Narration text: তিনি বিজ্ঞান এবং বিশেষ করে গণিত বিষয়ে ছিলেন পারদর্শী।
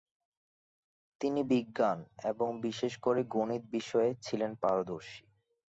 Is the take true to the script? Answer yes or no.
yes